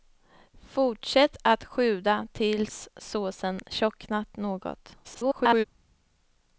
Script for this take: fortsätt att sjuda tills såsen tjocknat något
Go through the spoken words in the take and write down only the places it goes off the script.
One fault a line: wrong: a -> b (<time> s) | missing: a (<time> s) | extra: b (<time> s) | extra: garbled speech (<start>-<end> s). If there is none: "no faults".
extra: garbled speech (5.0-5.6 s)